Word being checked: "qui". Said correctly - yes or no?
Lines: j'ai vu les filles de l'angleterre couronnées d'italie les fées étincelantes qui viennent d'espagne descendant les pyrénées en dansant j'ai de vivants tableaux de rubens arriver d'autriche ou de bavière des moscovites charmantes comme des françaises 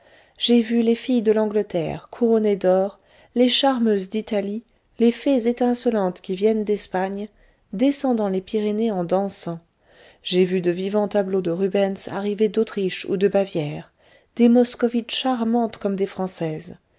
yes